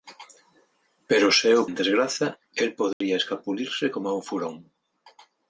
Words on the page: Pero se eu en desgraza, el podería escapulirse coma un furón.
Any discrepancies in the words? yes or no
no